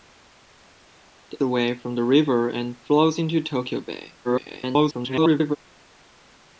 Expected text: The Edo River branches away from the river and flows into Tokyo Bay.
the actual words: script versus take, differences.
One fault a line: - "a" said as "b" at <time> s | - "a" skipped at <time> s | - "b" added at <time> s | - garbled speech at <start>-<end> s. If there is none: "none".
- "Edo River branches" skipped at 1.4 s
- garbled speech at 4.2-5.6 s